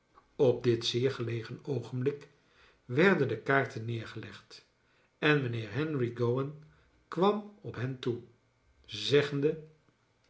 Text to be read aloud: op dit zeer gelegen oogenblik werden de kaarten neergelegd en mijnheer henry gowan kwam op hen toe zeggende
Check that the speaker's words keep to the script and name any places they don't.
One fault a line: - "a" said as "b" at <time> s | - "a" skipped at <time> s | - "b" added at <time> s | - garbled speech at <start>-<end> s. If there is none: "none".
none